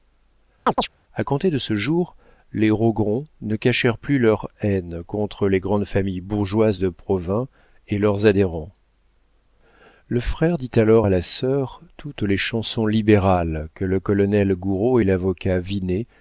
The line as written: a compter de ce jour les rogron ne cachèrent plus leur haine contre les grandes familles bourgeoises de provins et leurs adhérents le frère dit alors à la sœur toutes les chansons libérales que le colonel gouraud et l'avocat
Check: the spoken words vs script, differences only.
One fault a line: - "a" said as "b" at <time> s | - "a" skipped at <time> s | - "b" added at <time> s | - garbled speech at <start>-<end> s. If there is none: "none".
none